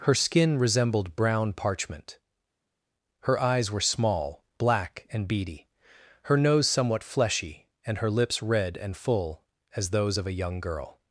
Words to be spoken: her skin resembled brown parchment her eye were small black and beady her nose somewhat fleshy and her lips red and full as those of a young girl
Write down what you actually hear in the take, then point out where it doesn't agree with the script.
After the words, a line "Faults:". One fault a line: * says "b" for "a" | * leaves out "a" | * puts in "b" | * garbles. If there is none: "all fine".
her skin resembled brown parchment her eyes were small black and beady her nose somewhat fleshy and her lips red and full as those of a young girl
Faults:
* says "eyes" for "eye"